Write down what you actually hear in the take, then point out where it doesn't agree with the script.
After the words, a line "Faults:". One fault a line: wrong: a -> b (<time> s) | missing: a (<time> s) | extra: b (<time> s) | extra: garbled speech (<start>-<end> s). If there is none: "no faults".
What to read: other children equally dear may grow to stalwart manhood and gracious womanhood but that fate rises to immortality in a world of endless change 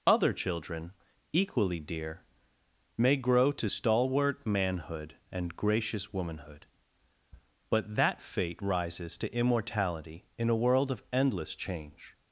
other children equally dear may grow to stalwart manhood and gracious womanhood but that fate rises to immortality in a world of endless change
Faults:
no faults